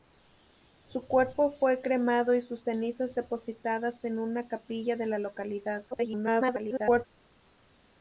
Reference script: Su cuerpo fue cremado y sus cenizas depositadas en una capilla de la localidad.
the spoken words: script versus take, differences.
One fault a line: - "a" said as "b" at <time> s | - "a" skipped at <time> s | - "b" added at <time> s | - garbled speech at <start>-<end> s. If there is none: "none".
- garbled speech at 5.9-7.0 s